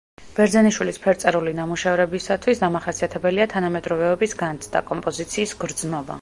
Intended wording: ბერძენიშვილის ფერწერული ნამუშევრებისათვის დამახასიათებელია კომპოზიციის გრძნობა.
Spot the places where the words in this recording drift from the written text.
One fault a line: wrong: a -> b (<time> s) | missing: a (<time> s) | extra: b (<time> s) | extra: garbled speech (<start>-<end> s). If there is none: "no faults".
extra: თანამედროვეობის განცდა (3.6 s)